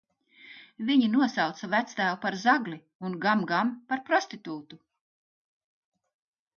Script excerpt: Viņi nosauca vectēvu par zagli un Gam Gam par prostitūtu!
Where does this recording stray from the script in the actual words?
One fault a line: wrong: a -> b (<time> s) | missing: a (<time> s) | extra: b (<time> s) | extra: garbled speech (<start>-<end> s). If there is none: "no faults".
no faults